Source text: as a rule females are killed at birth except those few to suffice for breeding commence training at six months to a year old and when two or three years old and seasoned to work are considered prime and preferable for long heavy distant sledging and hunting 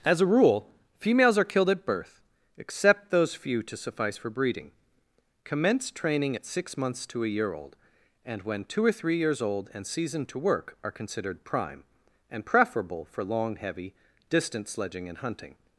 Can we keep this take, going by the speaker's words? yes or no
yes